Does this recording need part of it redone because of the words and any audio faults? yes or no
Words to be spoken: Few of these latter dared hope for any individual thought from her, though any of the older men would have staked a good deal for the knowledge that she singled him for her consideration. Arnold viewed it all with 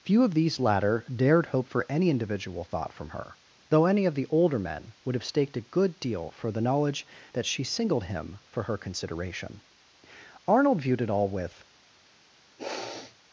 yes